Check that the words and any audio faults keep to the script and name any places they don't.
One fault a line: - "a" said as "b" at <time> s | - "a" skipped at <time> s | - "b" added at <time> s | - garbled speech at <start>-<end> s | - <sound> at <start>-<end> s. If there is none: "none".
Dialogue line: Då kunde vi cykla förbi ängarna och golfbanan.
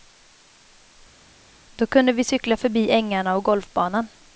none